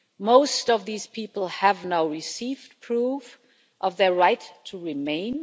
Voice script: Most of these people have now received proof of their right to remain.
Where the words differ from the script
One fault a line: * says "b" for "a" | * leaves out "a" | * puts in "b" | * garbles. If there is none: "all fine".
all fine